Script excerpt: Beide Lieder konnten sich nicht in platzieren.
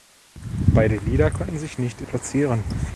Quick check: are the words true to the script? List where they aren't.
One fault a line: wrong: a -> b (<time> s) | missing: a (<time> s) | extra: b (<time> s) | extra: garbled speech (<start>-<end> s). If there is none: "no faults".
no faults